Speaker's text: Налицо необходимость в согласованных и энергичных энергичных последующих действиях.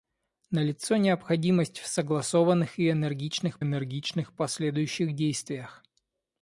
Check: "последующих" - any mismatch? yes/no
no